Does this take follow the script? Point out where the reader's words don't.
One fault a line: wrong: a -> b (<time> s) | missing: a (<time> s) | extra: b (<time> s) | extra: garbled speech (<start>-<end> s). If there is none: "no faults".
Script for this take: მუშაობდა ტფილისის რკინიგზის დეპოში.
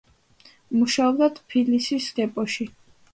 missing: რკინიგზის (2.1 s)